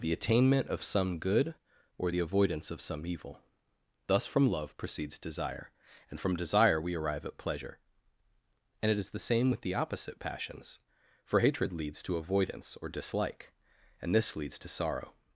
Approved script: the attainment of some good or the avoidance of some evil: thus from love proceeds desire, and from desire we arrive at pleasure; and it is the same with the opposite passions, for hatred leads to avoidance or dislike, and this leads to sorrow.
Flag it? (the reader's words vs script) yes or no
no